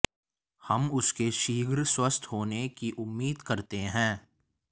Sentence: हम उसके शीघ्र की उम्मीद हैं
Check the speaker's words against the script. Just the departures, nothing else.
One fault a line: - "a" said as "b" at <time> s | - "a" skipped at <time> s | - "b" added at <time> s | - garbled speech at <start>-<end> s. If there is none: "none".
- "स्वस्थ होने" added at 1.8 s
- "करते" added at 3.4 s